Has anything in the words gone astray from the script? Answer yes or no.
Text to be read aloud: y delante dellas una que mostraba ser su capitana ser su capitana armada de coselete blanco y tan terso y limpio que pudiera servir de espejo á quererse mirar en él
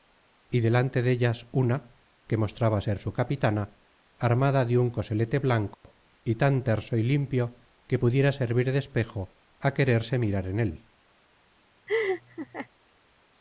yes